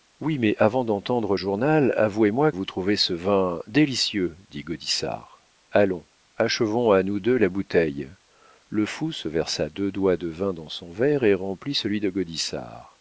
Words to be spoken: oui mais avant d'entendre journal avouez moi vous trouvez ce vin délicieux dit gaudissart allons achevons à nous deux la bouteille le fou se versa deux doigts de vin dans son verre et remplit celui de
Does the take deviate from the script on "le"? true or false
false